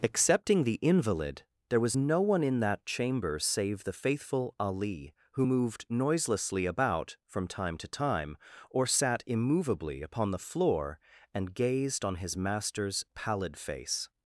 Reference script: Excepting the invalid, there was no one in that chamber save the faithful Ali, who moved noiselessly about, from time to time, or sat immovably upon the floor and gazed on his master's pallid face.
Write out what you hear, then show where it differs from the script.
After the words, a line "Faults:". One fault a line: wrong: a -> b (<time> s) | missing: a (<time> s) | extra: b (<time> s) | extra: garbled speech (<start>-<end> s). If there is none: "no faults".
Excepting the invalid, there was no one in that chamber save the faithful Ali, who moved noiselessly about, from time to time, or sat immovably upon the floor and gazed on his master's pallid face.
Faults:
no faults